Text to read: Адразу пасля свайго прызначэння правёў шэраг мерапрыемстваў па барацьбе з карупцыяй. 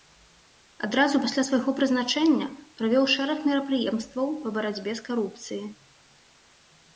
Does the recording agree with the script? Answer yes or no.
yes